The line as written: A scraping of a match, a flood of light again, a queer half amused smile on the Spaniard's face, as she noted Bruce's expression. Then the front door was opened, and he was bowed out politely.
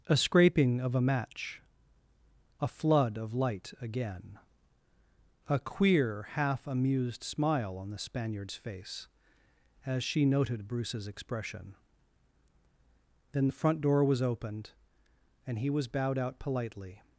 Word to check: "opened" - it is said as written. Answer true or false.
true